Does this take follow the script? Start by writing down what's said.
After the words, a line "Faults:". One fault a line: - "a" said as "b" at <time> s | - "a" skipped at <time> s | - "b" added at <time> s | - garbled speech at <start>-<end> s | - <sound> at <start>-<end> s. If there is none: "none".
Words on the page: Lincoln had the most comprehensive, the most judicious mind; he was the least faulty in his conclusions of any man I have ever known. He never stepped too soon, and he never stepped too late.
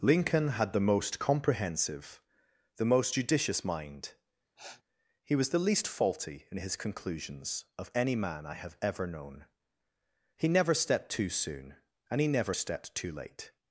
Lincoln had the most comprehensive, the most judicious mind; he was the least faulty in his conclusions of any man I have ever known. He never stepped too soon, and he never stepped too late.
Faults:
- sniff at 4.6-4.8 s